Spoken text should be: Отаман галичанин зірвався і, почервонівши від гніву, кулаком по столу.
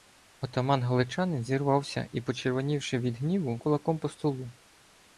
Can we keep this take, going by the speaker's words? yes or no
yes